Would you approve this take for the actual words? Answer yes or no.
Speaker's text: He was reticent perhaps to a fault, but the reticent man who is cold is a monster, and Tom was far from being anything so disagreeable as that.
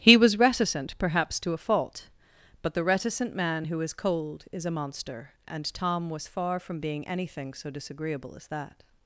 yes